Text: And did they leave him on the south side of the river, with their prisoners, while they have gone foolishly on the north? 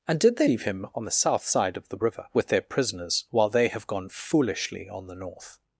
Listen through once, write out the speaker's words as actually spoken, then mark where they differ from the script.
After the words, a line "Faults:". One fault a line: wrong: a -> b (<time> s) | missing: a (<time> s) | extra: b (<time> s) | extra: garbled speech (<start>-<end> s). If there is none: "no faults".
And did they leave him on the south side of the river, with their prisoners, while they have gone foolishly on the north?
Faults:
no faults